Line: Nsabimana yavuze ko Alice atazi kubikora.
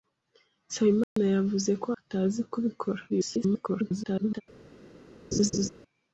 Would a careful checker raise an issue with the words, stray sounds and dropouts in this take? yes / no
yes